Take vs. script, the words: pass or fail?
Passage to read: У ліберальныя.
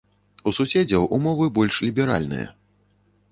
fail